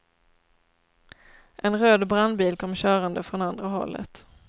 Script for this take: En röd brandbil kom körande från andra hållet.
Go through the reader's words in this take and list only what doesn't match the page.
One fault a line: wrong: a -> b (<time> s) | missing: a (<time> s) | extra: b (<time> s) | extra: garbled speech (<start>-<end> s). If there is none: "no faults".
no faults